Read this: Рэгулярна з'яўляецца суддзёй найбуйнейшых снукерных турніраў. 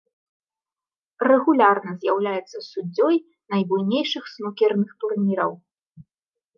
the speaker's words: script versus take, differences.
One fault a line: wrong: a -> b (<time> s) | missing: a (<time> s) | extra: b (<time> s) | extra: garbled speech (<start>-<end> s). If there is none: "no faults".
no faults